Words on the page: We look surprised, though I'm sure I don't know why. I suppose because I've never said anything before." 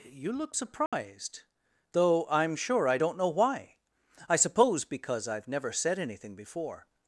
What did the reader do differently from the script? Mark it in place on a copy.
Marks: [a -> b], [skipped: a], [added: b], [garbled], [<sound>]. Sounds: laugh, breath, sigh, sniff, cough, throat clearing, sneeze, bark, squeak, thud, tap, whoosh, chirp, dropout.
[We -> You] look surprised, [dropout] though I'm sure I don't know why. I suppose because I've never said anything before."